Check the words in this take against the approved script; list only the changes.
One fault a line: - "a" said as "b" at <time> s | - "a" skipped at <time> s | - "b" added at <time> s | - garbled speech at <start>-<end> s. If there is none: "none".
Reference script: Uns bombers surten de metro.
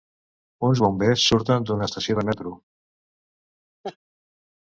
- "d'una estació" added at 1.7 s